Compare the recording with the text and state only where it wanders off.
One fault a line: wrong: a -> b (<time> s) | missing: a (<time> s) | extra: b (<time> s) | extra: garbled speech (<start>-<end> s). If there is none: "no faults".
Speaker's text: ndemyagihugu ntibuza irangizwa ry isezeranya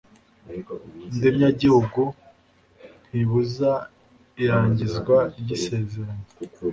no faults